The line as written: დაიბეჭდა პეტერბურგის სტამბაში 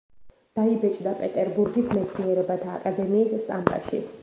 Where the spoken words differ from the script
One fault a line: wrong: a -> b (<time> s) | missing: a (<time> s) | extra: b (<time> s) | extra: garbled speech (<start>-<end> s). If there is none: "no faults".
extra: მეცნიერებათა აკადემიის (2.0 s)